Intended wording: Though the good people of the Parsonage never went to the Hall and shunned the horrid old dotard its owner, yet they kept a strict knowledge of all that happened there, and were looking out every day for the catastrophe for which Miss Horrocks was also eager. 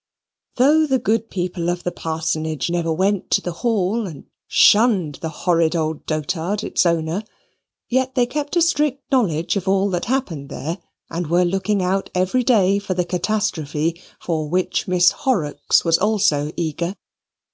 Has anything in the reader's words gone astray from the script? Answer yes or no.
no